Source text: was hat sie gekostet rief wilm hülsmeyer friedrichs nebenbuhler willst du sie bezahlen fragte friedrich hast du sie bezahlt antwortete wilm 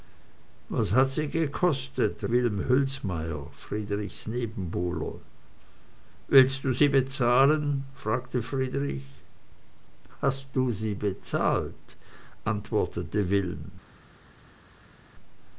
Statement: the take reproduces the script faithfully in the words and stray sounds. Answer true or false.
false